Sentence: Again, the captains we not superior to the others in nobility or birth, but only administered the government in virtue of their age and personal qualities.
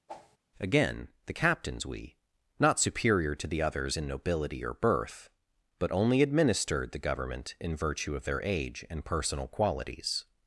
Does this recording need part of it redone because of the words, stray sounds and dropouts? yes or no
yes